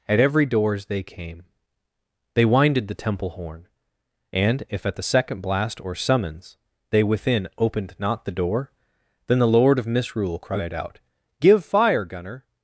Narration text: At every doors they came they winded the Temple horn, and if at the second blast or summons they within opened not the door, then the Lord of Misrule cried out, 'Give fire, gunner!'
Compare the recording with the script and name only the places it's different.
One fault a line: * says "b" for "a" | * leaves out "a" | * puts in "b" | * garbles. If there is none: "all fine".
all fine